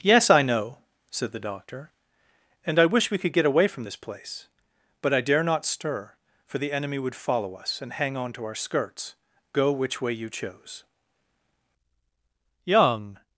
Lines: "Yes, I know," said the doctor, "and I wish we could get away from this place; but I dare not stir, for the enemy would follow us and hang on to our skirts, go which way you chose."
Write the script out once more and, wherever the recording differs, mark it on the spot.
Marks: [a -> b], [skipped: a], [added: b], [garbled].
"Yes, I know," said the doctor, "and I wish we could get away from this place; but I dare not stir, for the enemy would follow us and hang on to our skirts, go which way you chose." [added: Young]